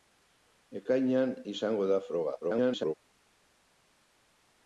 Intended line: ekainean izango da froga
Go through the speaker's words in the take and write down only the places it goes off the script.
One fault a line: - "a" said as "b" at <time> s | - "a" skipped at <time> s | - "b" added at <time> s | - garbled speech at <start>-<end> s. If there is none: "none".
- garbled speech at 2.4-2.9 s